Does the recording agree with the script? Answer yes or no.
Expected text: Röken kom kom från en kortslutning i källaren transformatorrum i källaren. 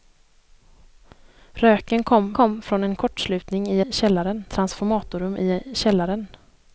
yes